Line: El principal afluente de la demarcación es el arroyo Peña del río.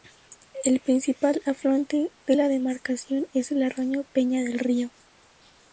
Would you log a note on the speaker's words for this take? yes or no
no